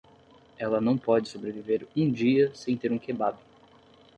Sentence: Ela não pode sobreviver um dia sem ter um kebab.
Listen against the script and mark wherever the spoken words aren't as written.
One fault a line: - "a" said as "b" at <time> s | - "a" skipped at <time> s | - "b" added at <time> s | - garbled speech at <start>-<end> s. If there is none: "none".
none